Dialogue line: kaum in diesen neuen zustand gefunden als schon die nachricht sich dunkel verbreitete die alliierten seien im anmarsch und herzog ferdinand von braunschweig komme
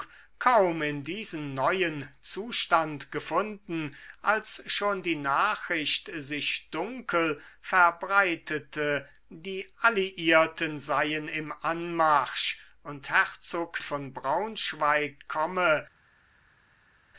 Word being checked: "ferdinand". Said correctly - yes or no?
no